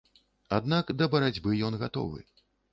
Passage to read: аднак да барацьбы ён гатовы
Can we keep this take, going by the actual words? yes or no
yes